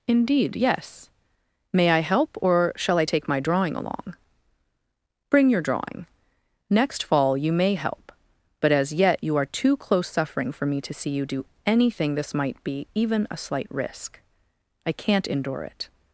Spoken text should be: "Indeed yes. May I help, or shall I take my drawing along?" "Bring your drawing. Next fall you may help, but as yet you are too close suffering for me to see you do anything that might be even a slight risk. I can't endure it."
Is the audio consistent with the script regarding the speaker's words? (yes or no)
no